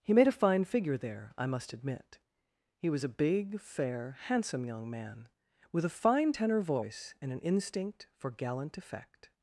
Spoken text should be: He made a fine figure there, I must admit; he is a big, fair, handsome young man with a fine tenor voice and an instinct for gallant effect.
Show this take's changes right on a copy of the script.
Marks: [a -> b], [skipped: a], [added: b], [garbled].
He made a fine figure there, I must admit; he [is -> was] a big, fair, handsome young man with a fine tenor voice and an instinct for gallant effect.